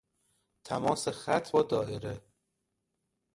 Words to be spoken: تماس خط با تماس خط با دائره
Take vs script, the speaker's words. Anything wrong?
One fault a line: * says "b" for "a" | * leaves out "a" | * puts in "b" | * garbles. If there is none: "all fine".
* leaves out "تماس خط با"